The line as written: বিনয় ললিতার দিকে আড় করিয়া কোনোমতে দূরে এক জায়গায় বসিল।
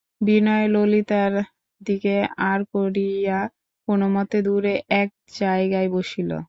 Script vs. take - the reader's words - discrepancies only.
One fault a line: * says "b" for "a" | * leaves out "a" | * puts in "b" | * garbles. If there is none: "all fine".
all fine